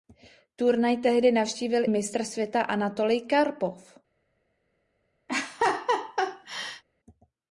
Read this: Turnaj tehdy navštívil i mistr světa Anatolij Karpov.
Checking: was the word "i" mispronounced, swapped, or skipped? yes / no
yes